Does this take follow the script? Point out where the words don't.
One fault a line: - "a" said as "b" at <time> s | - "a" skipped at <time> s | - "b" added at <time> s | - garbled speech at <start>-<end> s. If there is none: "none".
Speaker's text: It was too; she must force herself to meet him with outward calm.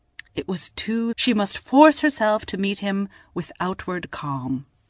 none